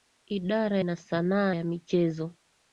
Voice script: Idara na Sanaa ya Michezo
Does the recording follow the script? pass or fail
pass